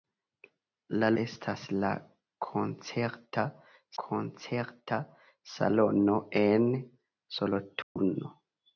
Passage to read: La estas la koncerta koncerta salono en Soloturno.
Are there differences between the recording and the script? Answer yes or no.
no